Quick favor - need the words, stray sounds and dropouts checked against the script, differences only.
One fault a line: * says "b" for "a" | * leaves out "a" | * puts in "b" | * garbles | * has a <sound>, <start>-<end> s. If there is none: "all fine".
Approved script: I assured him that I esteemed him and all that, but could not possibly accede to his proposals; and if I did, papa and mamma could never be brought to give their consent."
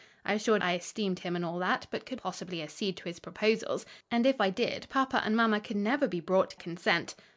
* leaves out "him that"
* leaves out "not"
* leaves out "give their"